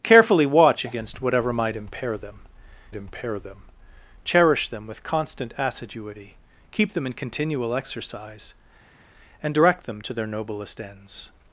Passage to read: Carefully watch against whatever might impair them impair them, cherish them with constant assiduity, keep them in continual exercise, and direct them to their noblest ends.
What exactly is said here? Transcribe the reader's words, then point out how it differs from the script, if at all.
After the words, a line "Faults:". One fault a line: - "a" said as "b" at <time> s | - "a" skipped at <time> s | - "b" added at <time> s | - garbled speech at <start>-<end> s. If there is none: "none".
Carefully watch against whatever might impair them impair them, cherish them with constant assiduity, keep them in continual exercise, and direct them to their noblest ends.
Faults:
none